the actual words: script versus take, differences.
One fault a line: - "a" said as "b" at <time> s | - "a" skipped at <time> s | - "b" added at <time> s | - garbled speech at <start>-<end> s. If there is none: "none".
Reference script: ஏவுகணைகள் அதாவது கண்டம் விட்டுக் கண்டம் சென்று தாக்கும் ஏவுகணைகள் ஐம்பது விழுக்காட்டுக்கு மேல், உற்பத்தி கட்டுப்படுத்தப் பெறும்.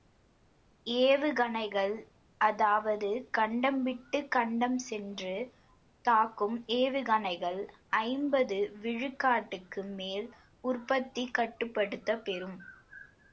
none